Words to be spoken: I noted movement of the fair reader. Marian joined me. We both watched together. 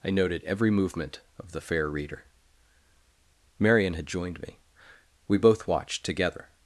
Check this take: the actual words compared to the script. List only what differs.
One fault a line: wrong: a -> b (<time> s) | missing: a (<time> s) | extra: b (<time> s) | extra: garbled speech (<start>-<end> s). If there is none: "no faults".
extra: every (0.4 s)
extra: had (4.0 s)